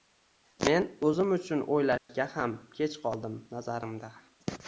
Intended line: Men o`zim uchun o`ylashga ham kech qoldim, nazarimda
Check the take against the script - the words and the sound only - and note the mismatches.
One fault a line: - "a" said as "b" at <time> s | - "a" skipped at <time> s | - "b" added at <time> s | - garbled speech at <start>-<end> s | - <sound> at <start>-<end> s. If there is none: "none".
- dropout at 2.0-2.1 s